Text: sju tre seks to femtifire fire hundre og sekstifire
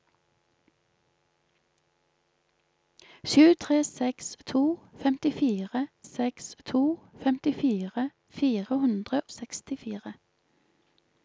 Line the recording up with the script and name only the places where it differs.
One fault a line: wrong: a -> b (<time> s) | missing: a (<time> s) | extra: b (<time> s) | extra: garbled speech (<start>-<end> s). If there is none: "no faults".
extra: seks to femtifire (6.0 s)
missing: og (9.2 s)